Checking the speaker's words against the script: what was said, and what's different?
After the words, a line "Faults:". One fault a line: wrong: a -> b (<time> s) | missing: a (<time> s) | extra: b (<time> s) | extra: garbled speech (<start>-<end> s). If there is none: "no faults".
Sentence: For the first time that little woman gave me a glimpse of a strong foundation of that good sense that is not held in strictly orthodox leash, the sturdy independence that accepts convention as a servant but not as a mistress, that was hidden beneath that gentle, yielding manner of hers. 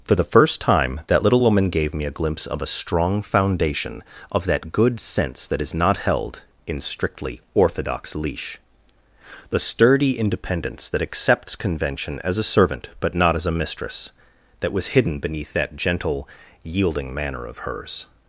For the first time that little woman gave me a glimpse of a strong foundation of that good sense that is not held in strictly orthodox leash, the sturdy independence that accepts convention as a servant but not as a mistress, that was hidden beneath that gentle, yielding manner of hers.
Faults:
no faults